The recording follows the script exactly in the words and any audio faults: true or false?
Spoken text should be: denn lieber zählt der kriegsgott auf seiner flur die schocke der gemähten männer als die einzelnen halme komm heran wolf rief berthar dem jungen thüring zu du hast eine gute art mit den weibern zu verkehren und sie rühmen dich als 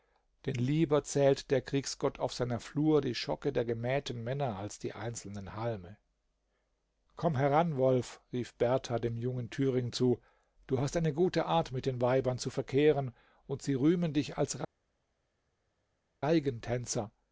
true